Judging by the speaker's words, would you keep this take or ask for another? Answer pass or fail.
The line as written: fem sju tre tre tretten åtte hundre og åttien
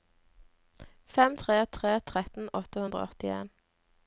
fail